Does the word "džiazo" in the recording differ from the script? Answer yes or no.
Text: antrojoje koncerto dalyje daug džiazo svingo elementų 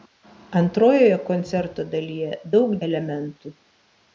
yes